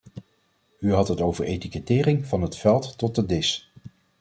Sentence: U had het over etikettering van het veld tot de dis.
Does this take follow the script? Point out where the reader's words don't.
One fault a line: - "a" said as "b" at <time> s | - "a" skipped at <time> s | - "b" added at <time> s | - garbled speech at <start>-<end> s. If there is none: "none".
none